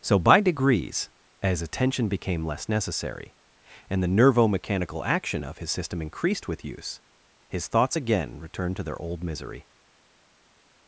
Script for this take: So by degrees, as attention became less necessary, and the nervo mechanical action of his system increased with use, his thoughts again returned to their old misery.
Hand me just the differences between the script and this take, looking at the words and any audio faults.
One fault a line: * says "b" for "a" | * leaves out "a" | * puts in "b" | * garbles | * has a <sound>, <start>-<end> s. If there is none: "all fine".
all fine